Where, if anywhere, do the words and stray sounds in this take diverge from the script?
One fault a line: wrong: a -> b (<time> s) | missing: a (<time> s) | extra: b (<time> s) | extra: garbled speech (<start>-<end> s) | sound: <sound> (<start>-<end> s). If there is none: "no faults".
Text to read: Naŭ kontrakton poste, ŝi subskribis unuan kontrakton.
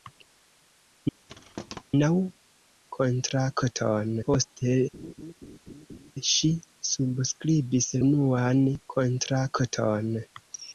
sound: thud (1.3-1.8 s)
sound: laugh (4.9-6.1 s)